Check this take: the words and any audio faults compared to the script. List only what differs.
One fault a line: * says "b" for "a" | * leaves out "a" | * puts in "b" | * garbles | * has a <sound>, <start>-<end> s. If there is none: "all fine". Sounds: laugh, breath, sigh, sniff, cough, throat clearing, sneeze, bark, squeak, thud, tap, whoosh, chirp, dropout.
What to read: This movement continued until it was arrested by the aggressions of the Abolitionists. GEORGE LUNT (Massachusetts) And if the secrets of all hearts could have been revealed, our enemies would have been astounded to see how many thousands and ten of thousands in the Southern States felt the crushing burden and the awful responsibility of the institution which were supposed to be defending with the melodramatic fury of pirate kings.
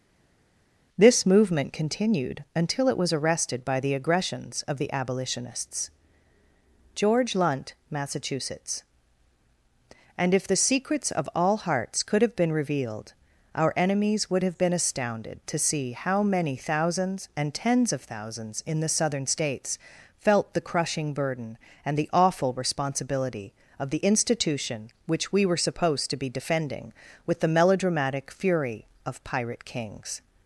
* says "tens" for "ten"
* puts in "we"